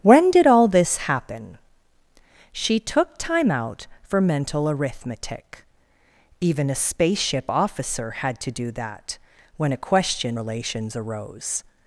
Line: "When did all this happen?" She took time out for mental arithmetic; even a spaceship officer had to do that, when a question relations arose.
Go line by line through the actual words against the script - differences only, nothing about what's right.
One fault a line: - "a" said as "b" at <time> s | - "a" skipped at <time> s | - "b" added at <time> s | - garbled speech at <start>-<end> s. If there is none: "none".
none